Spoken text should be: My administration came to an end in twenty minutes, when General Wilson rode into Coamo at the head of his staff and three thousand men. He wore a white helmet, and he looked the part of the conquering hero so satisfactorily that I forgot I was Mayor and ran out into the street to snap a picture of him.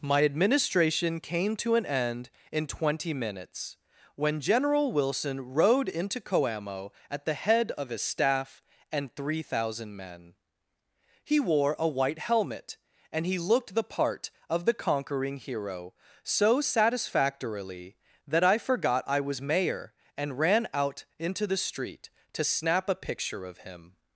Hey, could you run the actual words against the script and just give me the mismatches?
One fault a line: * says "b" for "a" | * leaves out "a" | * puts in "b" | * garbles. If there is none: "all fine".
all fine